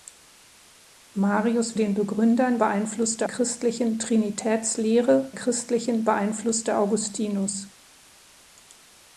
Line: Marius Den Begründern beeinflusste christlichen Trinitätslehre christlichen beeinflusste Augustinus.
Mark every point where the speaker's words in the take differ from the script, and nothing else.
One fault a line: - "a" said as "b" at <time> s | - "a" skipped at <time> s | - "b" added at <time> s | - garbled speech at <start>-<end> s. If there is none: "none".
none